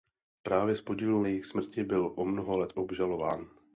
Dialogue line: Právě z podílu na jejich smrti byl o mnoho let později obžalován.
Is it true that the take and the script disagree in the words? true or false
true